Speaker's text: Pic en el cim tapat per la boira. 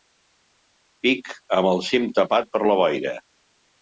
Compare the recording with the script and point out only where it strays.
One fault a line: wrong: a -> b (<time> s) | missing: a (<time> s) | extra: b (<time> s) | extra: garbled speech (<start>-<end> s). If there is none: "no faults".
wrong: en -> amb (1.6 s)